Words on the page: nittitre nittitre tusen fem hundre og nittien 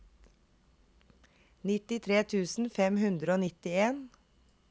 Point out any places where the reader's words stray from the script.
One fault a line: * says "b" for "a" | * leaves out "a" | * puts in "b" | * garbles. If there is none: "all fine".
* leaves out "nittitre"